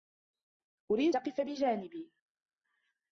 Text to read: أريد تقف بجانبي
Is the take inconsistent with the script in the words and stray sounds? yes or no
no